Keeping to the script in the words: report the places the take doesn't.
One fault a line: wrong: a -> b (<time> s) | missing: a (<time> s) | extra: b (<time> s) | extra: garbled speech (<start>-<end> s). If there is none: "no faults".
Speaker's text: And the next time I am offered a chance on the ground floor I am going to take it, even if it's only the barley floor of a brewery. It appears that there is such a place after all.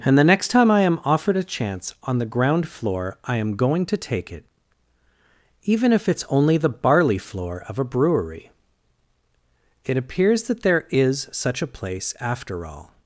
no faults